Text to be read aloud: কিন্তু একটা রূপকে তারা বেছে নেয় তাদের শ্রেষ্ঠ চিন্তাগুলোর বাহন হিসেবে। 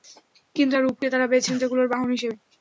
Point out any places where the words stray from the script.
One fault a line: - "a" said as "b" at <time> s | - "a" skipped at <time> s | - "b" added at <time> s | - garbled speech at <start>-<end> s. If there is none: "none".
- "একটা" skipped at 0.7 s
- "নেয় তাদের শ্রেষ্ঠ" skipped at 1.5 s